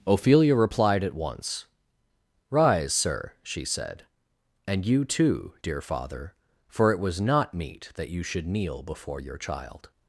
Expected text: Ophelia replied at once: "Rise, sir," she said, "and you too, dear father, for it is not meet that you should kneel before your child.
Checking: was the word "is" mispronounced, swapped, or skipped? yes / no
yes